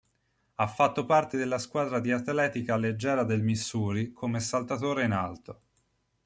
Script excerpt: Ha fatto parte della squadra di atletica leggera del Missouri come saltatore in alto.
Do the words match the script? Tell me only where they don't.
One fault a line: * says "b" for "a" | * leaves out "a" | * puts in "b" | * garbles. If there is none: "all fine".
all fine